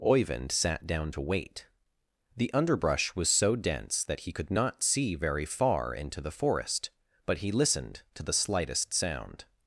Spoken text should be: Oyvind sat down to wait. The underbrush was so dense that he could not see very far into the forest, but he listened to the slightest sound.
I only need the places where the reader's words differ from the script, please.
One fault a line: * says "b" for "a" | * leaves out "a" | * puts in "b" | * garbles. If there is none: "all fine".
all fine